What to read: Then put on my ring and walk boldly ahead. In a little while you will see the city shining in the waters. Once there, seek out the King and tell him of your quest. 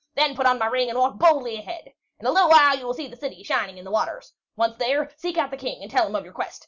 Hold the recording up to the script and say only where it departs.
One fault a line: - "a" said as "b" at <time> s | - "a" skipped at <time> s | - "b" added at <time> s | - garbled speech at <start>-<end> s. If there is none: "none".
none